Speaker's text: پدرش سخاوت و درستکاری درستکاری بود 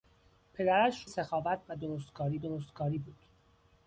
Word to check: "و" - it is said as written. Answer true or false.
true